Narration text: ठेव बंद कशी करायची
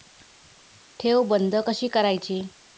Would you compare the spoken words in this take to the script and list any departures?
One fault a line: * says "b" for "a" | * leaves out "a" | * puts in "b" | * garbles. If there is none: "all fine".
all fine